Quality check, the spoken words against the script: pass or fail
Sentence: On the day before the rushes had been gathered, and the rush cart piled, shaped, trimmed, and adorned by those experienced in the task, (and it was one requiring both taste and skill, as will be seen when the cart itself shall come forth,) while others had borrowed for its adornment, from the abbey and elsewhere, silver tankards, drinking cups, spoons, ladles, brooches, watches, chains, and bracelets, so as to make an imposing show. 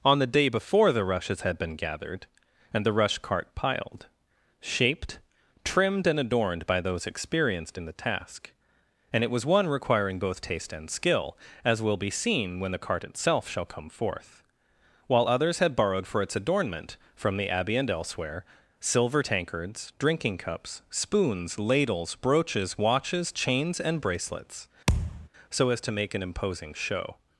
pass